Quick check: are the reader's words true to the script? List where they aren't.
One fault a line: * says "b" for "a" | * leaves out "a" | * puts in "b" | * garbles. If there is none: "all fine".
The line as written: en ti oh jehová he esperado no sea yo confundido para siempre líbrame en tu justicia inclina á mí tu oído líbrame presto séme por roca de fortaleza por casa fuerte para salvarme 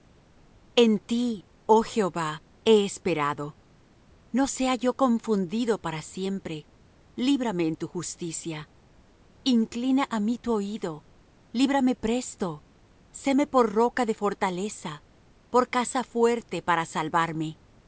all fine